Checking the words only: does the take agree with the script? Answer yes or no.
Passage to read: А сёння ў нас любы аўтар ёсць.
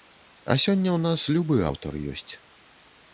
yes